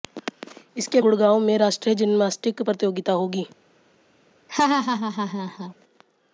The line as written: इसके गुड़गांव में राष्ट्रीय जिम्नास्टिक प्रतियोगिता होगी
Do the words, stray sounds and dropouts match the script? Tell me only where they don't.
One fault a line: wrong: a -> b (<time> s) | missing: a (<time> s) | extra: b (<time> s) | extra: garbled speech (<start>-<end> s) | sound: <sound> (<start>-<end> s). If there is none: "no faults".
sound: laugh (4.5-5.7 s)